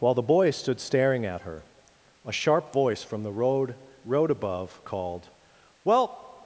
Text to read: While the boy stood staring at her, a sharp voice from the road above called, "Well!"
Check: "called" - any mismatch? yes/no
no